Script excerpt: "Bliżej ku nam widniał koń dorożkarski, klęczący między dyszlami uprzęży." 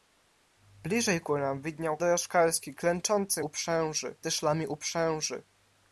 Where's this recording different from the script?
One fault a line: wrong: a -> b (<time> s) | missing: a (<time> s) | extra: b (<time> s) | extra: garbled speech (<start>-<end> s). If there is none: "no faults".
missing: koń (2.0 s)
wrong: między -> uprzęży (3.4 s)